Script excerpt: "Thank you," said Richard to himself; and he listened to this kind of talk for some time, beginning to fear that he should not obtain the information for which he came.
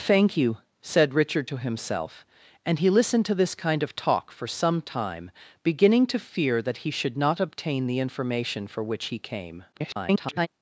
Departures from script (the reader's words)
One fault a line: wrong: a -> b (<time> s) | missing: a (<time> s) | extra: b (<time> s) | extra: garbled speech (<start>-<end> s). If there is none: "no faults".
extra: garbled speech (9.7-10.5 s)